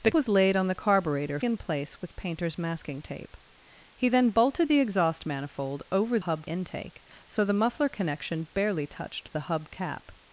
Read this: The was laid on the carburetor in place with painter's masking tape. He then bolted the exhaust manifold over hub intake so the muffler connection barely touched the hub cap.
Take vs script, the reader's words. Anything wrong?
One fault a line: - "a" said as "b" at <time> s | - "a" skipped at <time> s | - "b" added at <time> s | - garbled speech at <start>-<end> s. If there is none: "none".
none